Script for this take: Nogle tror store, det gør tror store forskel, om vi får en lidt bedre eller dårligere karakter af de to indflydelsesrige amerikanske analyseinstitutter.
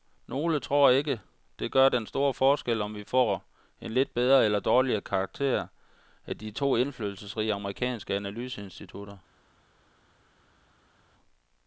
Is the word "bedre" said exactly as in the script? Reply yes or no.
yes